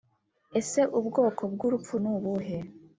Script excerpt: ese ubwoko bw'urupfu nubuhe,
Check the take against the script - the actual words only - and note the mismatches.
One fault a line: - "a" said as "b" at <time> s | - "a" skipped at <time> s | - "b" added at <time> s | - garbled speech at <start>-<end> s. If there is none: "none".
none